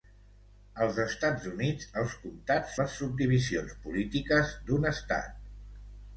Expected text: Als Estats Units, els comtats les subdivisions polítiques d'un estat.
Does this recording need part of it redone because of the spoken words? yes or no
no